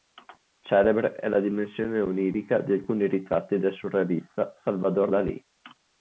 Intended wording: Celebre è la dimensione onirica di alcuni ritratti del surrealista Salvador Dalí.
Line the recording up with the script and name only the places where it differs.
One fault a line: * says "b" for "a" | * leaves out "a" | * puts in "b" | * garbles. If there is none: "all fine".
all fine